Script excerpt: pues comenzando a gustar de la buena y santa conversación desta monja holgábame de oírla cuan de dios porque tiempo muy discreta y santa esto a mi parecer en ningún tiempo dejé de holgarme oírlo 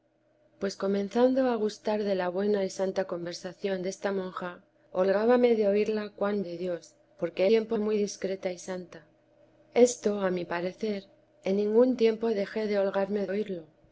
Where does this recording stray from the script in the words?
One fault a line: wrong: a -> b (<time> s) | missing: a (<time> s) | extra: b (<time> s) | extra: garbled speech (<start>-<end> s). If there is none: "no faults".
no faults